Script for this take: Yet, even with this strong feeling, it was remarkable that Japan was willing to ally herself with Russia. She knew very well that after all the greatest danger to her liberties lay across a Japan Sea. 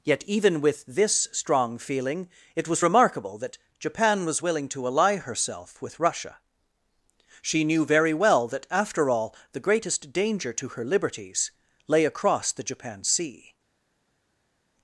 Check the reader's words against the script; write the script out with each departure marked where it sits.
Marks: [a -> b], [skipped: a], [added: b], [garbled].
Yet, even with this strong feeling, it was remarkable that Japan was willing to ally herself with Russia. She knew very well that after all the greatest danger to her liberties lay across [a -> the] Japan Sea.